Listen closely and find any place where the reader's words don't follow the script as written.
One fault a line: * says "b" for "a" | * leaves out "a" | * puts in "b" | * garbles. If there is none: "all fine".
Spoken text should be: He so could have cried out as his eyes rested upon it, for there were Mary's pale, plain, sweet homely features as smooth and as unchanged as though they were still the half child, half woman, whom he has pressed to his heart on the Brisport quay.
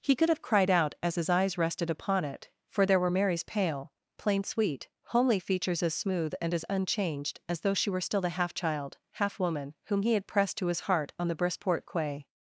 * leaves out "so"
* says "she" for "they"
* says "had" for "has"